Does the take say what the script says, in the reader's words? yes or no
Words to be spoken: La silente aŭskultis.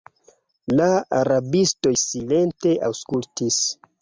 no